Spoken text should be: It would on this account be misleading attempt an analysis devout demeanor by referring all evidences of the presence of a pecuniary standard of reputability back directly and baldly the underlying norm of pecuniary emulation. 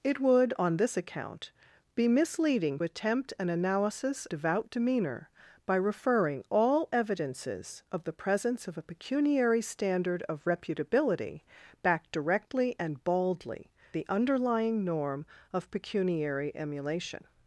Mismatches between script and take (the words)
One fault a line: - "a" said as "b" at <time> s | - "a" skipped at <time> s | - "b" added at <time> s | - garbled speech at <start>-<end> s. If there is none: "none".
none